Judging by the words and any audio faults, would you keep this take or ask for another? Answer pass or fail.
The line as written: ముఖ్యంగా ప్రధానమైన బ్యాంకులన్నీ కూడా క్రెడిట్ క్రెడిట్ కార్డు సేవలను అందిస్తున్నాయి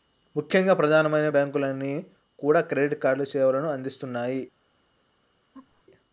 fail